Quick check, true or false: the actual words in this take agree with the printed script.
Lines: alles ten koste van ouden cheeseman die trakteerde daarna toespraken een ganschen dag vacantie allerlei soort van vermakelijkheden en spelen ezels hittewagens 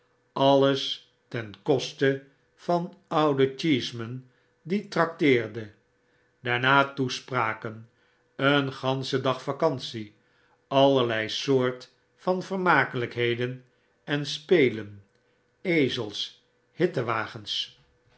true